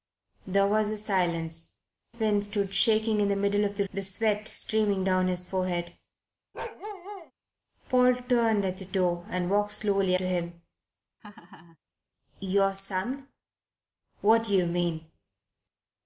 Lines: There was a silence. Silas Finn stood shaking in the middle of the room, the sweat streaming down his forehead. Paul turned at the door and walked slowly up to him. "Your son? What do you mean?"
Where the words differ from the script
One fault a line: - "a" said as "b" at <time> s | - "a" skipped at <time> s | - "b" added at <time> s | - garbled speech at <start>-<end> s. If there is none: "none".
- "Silas" skipped at 1.8 s
- "room" skipped at 3.8 s
- "up" skipped at 10.1 s